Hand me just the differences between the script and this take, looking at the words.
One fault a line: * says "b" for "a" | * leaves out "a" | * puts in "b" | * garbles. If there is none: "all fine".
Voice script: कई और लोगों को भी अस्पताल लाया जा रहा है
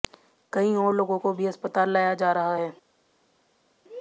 all fine